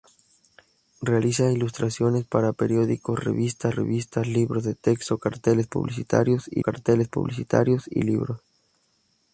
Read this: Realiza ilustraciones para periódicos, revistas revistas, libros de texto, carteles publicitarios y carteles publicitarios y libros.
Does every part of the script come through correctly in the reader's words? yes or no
yes